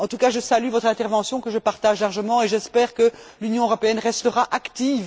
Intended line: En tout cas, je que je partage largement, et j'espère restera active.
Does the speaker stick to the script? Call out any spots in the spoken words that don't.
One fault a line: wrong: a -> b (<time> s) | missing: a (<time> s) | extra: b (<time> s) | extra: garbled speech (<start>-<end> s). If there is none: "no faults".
extra: salue votre intervention (0.4 s)
extra: que l'Union européenne (3.0 s)